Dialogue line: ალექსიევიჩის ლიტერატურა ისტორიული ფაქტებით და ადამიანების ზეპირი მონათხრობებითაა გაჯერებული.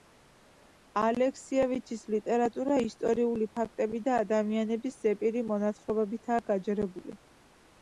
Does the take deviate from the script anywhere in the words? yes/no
no